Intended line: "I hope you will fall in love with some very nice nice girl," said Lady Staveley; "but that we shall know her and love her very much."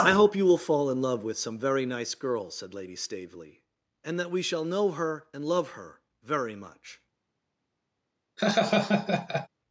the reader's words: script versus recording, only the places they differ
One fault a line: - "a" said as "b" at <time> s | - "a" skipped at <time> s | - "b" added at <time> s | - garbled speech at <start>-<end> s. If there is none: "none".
- "nice" skipped at 2.1 s
- "but" said as "and" at 4.0 s